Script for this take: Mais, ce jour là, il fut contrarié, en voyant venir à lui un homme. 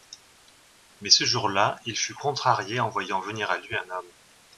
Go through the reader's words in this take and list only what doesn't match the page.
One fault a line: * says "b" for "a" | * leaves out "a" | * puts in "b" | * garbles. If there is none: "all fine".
all fine